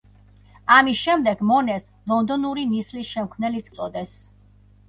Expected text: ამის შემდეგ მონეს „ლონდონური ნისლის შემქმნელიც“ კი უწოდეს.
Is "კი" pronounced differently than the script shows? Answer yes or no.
yes